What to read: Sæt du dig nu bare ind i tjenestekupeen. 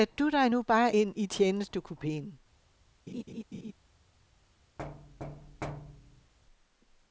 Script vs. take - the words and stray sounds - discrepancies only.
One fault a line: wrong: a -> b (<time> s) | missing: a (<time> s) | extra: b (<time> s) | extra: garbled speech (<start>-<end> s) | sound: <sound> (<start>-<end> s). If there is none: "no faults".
sound: laugh (3.1-3.7 s)
sound: thud (4.8-6.3 s)